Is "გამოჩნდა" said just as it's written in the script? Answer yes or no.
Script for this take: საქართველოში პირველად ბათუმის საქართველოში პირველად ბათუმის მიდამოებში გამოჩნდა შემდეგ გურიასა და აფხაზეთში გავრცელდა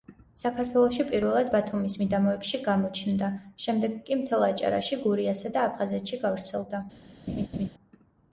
no